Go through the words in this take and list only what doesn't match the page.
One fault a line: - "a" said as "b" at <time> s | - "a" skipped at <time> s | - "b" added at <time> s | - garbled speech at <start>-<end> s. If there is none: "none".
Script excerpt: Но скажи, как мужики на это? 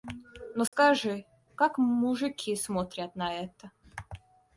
- "смотрят" added at 2.5 s